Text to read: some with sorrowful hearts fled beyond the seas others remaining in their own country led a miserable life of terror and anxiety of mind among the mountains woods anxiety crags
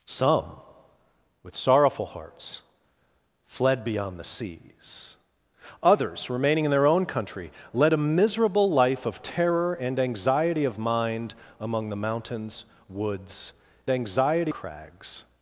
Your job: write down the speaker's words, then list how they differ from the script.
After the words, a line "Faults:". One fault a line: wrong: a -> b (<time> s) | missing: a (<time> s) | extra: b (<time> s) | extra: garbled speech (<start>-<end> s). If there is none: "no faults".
some with sorrowful hearts fled beyond the seas others remaining in their own country led a miserable life of terror and anxiety of mind among the mountains woods anxiety crags
Faults:
no faults